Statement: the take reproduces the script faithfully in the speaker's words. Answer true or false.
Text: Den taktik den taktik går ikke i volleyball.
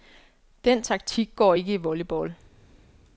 false